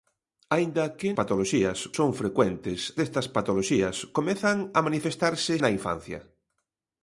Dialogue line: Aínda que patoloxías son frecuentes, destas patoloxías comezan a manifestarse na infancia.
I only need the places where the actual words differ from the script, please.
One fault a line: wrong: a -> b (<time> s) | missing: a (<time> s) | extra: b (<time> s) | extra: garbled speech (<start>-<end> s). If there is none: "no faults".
no faults